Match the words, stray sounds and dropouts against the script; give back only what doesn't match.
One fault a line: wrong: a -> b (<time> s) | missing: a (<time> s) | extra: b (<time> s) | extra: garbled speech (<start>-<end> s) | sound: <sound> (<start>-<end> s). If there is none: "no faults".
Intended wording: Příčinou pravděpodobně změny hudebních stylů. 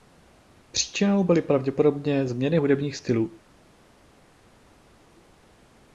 extra: byly (1.2 s)